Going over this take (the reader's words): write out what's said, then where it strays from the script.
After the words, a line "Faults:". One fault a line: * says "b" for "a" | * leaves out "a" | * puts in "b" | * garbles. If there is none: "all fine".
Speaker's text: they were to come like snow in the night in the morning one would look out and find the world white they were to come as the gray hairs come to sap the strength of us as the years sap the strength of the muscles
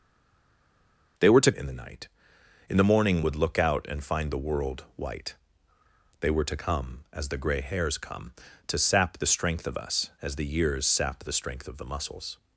they were to in the night in the morning would look out and find the world white they were to come as the gray hairs come to sap the strength of us as the years sap the strength of the muscles
Faults:
* leaves out "come like snow"
* leaves out "one"